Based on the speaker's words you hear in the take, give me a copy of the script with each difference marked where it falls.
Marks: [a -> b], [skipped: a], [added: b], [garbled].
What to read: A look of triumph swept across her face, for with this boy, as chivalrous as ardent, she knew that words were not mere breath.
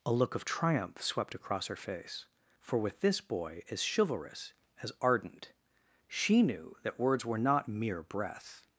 A look of triumph swept across her face, for with this boy, as chivalrous as ardent, she knew that words were not mere breath.